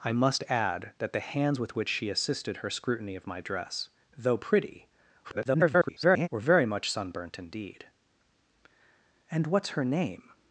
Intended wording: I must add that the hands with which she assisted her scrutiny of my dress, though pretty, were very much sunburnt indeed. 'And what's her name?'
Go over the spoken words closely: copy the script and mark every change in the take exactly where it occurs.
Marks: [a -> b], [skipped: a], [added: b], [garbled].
I must add that the hands with which she assisted her scrutiny of my dress, though pretty, [garbled] were very much sunburnt indeed. 'And what's her name?'